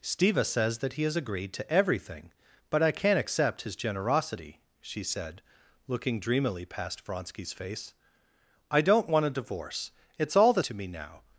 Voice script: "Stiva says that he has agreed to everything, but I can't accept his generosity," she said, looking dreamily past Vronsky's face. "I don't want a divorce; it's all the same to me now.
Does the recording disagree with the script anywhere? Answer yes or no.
yes